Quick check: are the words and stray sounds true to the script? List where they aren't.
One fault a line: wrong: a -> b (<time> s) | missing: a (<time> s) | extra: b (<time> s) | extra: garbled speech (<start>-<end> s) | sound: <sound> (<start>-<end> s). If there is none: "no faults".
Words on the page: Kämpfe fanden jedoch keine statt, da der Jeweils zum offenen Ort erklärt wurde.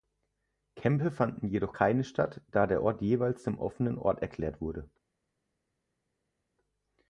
extra: Ort (2.8 s)